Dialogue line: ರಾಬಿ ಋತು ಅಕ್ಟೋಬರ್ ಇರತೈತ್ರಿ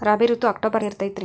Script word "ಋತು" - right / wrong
right